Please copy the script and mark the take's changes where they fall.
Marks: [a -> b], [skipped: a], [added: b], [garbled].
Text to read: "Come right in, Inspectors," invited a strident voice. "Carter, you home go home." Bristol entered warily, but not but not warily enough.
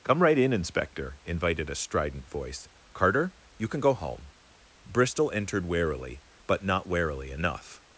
"Come right in, [Inspectors," -> Inspector] invited a strident voice. "Carter, you [home -> can] go home." Bristol entered warily, but not [skipped: but not] warily enough.